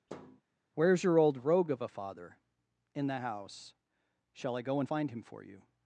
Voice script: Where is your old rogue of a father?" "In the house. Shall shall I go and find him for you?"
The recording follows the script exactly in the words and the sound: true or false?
false